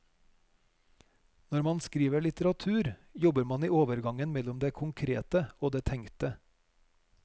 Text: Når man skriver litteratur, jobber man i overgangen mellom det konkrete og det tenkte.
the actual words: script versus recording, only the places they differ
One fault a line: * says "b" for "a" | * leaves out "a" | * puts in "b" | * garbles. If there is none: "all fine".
all fine